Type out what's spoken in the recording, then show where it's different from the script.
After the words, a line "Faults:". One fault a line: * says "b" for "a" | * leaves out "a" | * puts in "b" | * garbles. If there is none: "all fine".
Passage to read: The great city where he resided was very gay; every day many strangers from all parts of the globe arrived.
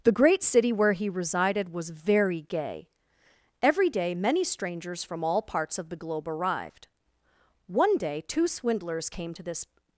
The great city where he resided was very gay; every day many strangers from all parts of the globe arrived. One day two swindlers came to this
Faults:
* puts in "One day two swindlers came to this"